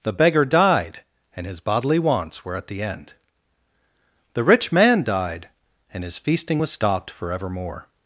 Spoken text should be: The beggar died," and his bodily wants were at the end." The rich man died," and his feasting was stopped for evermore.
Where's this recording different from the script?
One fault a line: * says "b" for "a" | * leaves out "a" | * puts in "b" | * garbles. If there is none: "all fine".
all fine